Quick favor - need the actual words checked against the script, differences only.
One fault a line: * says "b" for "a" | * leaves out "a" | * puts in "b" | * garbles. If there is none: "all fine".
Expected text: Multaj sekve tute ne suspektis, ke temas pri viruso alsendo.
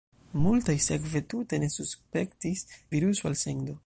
* leaves out "ke temas pri"